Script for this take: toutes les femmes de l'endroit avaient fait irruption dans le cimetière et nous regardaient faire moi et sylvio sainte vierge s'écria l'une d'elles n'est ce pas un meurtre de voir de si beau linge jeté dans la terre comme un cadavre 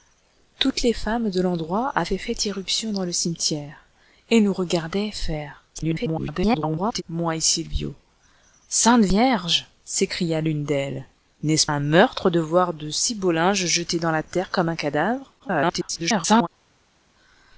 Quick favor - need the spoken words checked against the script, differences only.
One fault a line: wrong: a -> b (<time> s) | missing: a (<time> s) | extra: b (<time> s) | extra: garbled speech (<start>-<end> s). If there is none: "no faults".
extra: garbled speech (5.7-7.0 s)
missing: pas (11.7 s)
extra: garbled speech (15.4-16.5 s)